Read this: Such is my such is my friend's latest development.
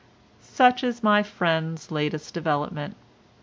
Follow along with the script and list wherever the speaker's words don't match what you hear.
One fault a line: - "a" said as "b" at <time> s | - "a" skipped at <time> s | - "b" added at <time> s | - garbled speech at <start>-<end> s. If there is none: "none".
- "such is my" skipped at 1.2 s